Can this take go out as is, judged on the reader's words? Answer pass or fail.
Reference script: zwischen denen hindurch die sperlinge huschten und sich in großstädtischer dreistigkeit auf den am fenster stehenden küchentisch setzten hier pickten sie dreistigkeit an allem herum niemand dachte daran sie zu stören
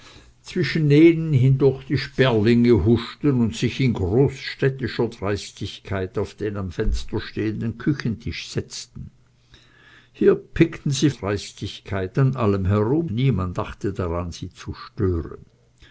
pass